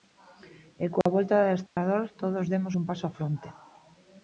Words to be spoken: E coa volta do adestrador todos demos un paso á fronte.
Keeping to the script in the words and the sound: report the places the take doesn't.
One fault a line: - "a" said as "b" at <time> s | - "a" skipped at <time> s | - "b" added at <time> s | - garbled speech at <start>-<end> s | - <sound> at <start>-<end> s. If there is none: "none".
- dropout at 1.0-1.1 s
- dropout at 1.7-1.8 s